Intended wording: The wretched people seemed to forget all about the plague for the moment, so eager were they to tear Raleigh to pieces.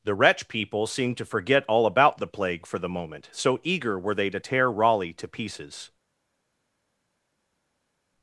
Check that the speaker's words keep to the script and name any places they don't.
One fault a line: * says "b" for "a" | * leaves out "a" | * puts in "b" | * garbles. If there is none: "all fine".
* says "wretch" for "wretched"